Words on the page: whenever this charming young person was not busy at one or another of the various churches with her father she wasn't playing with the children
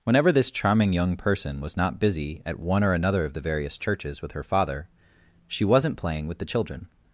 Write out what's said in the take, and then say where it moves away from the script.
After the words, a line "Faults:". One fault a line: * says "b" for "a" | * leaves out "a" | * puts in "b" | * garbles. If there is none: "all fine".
whenever this charming young person was not busy at one or another of the various churches with her father she wasn't playing with the children
Faults:
all fine